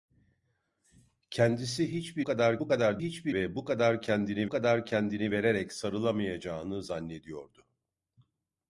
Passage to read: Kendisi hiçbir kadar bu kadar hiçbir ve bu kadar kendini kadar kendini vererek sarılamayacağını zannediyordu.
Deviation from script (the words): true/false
false